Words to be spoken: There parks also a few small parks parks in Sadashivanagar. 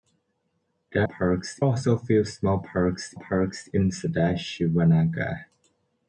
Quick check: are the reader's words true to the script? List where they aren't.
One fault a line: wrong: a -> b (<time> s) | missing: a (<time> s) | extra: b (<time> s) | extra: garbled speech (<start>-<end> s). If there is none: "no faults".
no faults